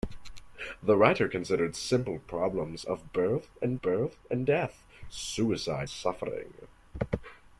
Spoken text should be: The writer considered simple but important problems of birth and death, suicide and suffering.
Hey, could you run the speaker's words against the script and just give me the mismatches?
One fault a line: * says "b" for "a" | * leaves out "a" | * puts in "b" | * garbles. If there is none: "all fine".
* leaves out "but important"
* puts in "birth and"
* leaves out "and"